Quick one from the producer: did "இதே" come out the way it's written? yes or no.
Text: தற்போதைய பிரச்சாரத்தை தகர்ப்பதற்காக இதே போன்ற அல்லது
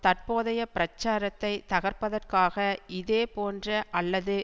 yes